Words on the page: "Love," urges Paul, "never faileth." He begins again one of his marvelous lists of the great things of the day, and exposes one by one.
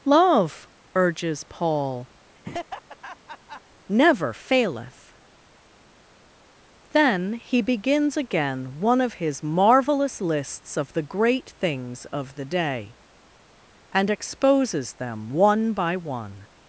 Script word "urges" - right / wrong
right